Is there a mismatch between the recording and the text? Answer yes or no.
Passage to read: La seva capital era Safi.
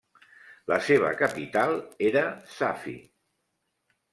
no